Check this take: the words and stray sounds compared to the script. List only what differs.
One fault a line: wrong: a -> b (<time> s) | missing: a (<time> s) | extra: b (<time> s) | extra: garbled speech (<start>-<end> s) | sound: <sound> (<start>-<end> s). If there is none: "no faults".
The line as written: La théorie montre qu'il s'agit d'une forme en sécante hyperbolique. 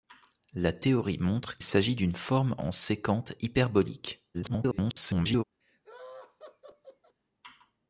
missing: qu'il (1.6 s)
extra: garbled speech (4.3-5.4 s)
sound: laugh (5.6-7.2 s)